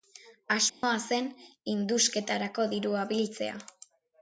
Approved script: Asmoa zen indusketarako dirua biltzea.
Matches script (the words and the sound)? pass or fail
fail